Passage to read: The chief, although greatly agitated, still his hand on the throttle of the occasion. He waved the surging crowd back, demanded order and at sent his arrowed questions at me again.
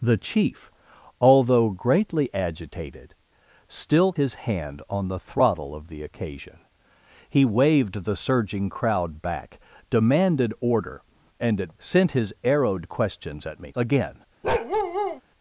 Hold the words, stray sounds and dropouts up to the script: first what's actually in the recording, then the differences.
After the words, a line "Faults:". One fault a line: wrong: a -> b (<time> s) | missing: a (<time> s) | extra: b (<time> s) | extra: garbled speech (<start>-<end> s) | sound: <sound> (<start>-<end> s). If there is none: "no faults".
The chief, although greatly agitated, still his hand on the throttle of the occasion. He waved the surging crowd back, demanded order and at sent his arrowed questions at me again.
Faults:
sound: bark (14.4-15.2 s)